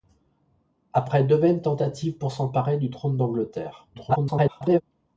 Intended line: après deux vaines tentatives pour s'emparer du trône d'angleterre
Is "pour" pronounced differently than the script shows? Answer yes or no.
no